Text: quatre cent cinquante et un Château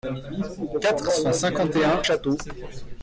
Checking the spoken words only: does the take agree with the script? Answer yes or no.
yes